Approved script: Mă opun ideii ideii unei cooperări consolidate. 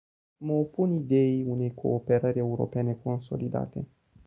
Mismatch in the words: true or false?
true